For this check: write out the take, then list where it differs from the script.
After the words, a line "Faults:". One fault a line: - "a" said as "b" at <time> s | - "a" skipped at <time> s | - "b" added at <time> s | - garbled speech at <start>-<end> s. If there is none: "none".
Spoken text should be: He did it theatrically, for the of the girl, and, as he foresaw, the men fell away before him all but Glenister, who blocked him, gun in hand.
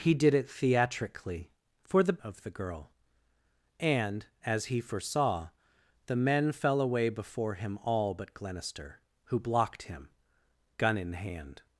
He did it theatrically, for the of the girl, and, as he foresaw, the men fell away before him all but Glenister, who blocked him, gun in hand.
Faults:
none